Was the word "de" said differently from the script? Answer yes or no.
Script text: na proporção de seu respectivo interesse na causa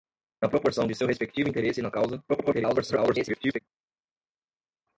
no